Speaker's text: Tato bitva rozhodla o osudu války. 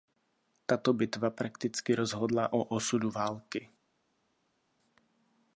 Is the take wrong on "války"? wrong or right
right